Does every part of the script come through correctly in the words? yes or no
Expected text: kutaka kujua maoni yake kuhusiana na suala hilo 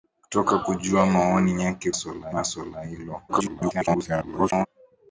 no